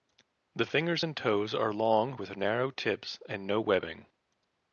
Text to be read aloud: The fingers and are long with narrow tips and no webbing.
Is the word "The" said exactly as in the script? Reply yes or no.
yes